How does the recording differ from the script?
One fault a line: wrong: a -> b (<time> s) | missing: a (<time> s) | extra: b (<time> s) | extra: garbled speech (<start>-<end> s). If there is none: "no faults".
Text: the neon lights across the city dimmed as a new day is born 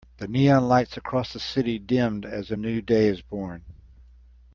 no faults